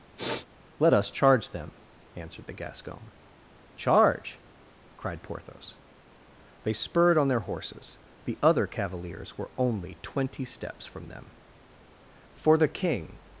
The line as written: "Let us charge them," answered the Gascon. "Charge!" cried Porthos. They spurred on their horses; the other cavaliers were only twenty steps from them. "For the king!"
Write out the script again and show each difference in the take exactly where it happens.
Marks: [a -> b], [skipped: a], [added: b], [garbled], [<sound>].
[sniff] "Let us charge them," answered the Gascon. "Charge!" cried Porthos. They spurred on their horses; the other cavaliers were only twenty steps from them. "For the king!"